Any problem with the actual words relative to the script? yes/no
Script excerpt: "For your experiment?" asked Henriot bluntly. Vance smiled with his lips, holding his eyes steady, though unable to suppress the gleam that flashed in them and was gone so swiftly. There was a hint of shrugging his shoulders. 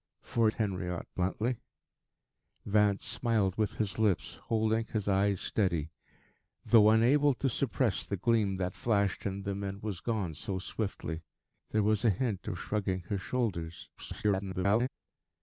yes